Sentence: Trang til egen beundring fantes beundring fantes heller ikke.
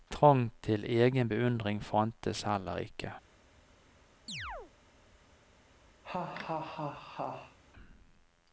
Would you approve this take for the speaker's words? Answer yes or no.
no